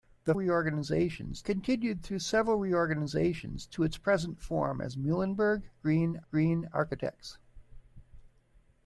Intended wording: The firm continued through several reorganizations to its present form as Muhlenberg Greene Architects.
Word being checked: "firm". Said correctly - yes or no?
no